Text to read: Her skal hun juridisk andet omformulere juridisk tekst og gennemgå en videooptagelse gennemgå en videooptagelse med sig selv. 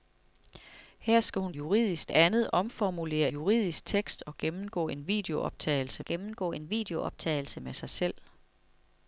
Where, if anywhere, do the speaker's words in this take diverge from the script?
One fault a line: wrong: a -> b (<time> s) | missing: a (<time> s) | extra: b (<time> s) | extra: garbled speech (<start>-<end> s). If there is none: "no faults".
no faults